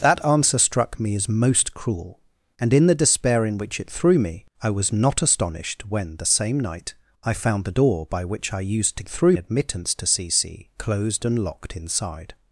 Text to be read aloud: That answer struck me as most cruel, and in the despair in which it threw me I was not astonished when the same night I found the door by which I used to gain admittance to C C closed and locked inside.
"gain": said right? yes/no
no